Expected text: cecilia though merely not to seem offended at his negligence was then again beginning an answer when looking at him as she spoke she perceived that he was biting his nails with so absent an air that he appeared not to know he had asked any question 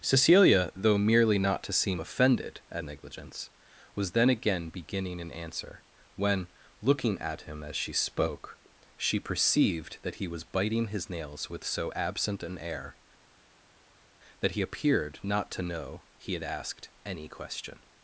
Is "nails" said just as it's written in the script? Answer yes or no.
yes